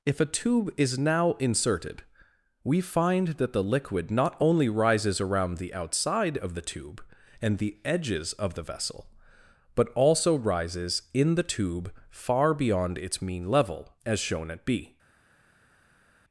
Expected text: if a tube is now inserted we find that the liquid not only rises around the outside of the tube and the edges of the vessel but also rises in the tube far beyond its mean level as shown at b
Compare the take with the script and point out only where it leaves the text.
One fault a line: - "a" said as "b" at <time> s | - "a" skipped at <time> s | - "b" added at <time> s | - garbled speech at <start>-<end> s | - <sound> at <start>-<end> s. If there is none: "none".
none